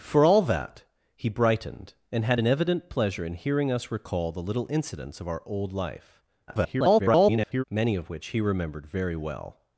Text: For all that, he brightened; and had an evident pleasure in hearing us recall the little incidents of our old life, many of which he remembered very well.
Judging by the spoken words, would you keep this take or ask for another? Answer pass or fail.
fail